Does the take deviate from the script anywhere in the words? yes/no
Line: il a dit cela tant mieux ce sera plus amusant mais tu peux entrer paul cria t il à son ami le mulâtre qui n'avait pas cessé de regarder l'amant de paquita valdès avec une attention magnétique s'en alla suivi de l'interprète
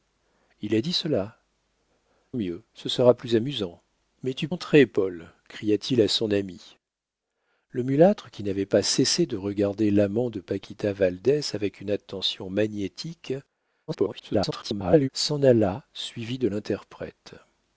yes